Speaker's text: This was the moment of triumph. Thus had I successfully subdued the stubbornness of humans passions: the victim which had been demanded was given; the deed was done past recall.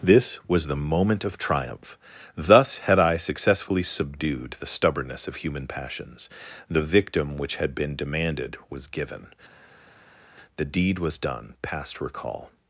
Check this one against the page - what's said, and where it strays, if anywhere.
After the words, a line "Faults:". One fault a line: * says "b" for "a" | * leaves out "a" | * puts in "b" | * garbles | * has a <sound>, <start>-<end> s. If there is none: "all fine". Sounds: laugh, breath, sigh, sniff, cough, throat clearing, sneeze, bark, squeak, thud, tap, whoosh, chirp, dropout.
This was the moment of triumph. Thus had I successfully subdued the stubbornness of human passions: the victim which had been demanded was given; the deed was done past recall.
Faults:
* says "human" for "humans"